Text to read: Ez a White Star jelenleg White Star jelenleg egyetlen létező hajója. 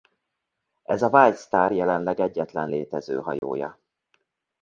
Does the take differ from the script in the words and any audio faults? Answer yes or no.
yes